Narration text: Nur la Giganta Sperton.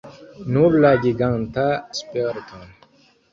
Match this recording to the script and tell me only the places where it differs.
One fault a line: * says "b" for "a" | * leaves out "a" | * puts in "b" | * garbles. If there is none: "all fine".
all fine